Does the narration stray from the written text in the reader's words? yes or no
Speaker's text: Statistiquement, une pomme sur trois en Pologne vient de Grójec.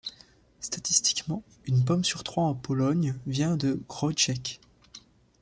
no